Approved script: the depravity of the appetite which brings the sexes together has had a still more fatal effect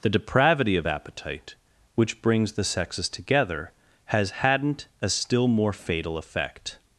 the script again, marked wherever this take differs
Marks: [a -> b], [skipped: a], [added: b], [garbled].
the depravity of [skipped: the] appetite which brings the sexes together has [had -> hadn't] a still more fatal effect